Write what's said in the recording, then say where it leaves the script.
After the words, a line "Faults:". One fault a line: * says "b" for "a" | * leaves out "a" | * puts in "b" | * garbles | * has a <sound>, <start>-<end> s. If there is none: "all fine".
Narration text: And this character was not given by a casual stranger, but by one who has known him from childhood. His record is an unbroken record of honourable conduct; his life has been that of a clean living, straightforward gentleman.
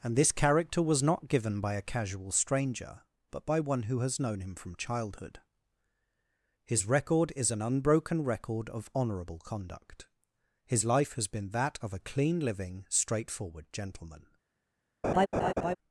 And this character was not given by a casual stranger, but by one who has known him from childhood. His record is an unbroken record of honourable conduct; his life has been that of a clean living, straightforward gentleman.
Faults:
* has a laugh, 15.0-15.8 s